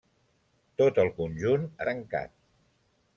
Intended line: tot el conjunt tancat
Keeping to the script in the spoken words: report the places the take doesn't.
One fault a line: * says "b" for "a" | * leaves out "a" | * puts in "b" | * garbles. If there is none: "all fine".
all fine